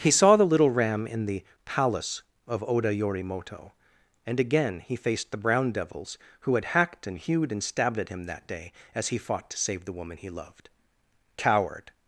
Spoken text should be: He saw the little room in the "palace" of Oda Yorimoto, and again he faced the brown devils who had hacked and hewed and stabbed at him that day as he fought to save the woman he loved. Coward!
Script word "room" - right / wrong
wrong